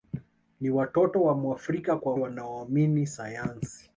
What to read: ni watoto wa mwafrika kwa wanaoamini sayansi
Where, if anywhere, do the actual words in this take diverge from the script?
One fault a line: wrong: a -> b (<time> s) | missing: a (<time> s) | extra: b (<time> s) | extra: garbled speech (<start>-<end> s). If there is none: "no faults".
no faults